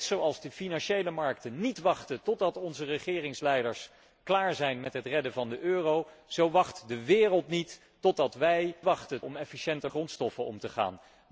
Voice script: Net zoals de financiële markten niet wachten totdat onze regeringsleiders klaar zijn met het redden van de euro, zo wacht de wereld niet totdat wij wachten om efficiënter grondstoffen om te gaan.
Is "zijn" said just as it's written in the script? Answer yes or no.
yes